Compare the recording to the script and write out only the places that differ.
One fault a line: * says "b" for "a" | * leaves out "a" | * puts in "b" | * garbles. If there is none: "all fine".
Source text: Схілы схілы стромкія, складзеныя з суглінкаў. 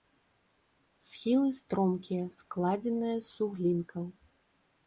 * leaves out "схілы"